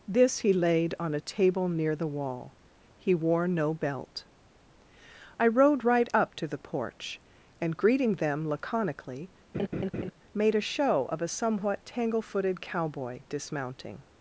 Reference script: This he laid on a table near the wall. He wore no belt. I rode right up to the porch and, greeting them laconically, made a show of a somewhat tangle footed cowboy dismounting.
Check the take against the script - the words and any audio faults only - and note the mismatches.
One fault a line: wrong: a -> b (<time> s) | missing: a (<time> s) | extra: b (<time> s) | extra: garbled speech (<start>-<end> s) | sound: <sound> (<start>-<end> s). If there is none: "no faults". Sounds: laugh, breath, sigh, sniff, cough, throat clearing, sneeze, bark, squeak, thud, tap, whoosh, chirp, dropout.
sound: laugh (9.5-10.1 s)